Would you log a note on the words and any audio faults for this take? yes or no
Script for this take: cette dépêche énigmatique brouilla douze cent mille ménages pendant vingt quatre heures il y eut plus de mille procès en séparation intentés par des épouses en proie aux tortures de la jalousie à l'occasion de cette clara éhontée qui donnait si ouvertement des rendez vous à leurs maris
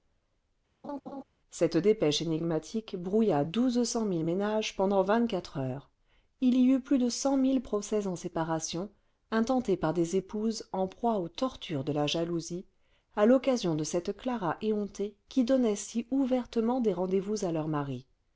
yes